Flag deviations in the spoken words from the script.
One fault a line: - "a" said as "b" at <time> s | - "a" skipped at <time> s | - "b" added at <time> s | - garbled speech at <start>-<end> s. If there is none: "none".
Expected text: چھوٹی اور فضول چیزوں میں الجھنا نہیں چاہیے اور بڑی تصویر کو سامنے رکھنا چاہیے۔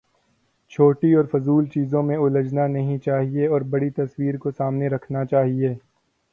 none